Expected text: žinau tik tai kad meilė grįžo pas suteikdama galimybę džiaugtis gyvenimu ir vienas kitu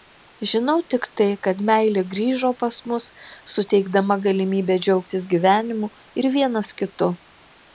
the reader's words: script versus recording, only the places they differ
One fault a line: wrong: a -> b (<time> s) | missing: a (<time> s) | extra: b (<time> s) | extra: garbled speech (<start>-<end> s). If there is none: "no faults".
extra: mus (2.9 s)